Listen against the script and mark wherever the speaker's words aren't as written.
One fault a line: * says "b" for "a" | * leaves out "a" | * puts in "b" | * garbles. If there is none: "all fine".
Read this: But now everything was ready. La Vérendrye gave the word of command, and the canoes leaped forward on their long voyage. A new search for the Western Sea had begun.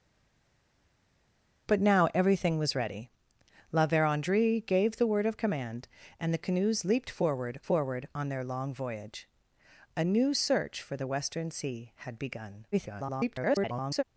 * puts in "forward"
* garbles